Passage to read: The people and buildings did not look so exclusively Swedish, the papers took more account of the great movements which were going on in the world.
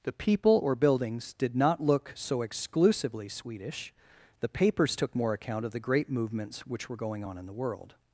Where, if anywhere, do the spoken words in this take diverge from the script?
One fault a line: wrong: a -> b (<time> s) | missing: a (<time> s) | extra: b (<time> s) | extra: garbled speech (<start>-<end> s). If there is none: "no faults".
wrong: and -> or (0.6 s)